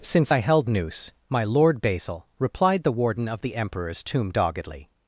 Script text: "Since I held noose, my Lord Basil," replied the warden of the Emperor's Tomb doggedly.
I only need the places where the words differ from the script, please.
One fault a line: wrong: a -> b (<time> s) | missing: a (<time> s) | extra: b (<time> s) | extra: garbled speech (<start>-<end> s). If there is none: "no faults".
no faults